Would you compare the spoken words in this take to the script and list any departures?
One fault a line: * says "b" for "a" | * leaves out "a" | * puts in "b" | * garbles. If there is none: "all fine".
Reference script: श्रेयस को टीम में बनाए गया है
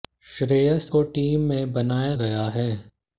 all fine